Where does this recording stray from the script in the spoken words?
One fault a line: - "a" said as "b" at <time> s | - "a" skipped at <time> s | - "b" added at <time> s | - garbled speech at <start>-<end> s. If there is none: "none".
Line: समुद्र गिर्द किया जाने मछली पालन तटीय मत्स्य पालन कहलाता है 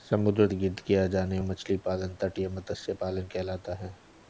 none